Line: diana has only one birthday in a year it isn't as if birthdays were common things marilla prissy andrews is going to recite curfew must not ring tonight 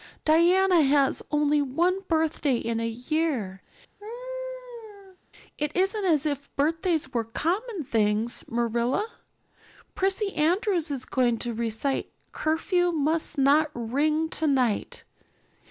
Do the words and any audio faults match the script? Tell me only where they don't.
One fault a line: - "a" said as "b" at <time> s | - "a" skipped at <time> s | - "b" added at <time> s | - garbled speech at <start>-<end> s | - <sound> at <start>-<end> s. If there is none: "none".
- laugh at 4.0-5.2 s